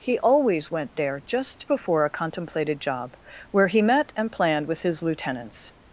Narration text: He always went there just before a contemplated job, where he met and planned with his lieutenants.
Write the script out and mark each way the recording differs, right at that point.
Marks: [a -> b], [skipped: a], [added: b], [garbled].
He always went there just before a contemplated job, where he met and planned with his lieutenants.